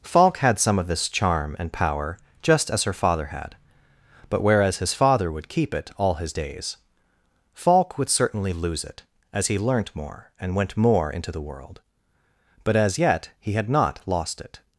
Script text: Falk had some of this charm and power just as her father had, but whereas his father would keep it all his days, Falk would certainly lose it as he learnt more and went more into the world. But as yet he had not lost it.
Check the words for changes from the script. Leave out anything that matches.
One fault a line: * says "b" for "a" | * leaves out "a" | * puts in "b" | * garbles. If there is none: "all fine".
all fine